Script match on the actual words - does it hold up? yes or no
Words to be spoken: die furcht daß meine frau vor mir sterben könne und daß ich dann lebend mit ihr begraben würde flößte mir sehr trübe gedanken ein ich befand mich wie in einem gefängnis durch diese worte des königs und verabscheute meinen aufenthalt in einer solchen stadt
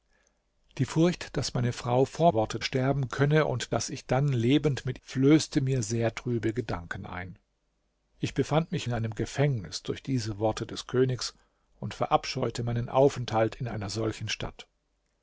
no